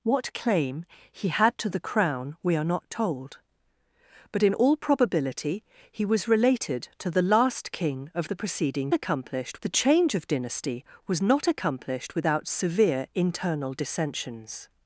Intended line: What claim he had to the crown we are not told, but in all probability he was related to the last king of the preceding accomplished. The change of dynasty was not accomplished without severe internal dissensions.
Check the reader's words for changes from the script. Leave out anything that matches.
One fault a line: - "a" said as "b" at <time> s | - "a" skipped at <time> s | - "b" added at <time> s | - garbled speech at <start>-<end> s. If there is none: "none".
none